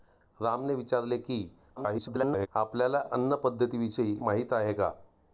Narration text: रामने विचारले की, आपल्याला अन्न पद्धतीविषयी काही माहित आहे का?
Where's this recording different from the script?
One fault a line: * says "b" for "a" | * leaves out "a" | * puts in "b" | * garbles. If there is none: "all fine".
* garbles
* leaves out "काही"